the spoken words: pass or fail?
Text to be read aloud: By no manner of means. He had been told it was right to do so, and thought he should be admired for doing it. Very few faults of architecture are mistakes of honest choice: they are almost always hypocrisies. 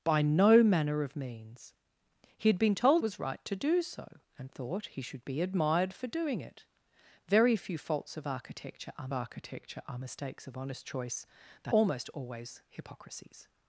fail